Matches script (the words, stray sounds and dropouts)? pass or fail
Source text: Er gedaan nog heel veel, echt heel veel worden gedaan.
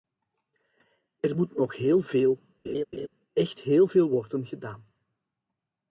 fail